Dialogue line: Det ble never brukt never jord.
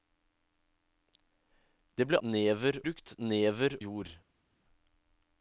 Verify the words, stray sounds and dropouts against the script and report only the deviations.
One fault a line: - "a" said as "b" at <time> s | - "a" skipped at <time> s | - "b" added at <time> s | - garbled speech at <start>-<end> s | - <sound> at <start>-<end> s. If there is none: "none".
none